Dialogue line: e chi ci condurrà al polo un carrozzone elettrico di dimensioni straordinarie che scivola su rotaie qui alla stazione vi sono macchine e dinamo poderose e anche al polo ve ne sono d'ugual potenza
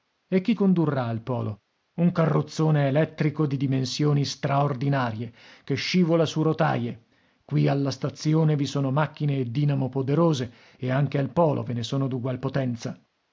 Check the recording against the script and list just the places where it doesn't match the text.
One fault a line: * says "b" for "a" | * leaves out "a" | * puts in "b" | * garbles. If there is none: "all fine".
* leaves out "ci"